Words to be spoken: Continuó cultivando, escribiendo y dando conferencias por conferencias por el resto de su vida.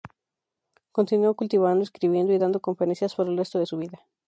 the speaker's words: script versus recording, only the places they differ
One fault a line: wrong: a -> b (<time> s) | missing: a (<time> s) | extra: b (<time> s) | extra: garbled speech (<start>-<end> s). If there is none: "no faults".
missing: conferencias por (3.3 s)